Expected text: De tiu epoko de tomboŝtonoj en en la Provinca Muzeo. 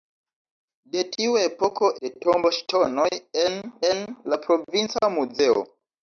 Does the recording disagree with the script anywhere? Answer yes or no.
no